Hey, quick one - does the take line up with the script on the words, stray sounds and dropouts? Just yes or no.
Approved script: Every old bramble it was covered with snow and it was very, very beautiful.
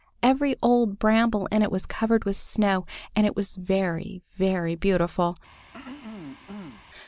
no